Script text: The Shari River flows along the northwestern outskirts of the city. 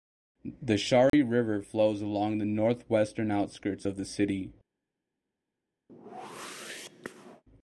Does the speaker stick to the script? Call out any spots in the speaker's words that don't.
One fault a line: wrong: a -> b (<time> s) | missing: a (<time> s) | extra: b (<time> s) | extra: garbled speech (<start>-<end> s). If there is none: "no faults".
no faults